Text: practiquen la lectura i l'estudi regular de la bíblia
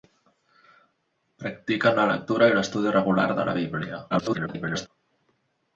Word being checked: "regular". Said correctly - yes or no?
yes